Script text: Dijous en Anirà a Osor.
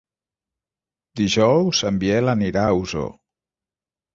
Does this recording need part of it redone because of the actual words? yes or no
yes